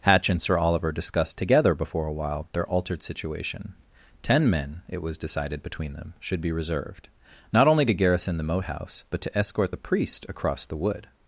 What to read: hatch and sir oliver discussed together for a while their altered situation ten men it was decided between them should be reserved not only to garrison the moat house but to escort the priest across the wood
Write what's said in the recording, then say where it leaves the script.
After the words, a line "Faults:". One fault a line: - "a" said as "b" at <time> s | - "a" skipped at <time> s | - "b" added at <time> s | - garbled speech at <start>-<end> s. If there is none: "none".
hatch and sir oliver discussed together before a while their altered situation ten men it was decided between them should be reserved not only to garrison the moat house but to escort the priest across the wood
Faults:
- "for" said as "before" at 1.8 s